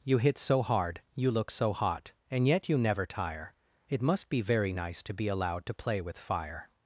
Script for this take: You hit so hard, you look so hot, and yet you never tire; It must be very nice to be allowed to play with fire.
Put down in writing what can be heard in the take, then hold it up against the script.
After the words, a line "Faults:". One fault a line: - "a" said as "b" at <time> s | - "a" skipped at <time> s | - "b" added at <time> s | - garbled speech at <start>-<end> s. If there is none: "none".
You hit so hard, you look so hot, and yet you never tire; It must be very nice to be allowed to play with fire.
Faults:
none